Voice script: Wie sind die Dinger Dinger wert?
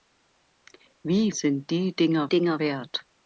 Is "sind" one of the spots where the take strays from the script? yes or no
no